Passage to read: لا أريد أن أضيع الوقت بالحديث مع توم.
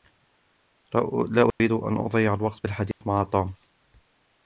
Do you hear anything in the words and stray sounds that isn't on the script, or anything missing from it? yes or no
yes